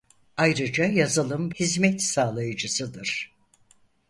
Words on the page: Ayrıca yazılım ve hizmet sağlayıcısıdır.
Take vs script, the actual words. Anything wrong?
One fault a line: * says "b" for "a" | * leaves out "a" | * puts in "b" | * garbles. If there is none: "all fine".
* leaves out "ve"